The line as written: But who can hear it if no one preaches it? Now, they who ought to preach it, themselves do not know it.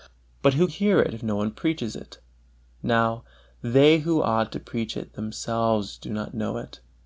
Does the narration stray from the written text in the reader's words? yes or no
yes